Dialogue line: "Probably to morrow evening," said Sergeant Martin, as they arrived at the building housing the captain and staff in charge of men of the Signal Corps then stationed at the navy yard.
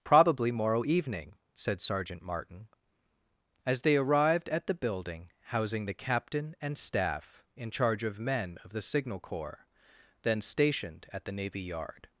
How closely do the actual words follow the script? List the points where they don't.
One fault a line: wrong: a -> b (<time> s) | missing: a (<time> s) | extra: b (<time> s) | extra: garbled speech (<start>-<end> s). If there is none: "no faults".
missing: to (0.5 s)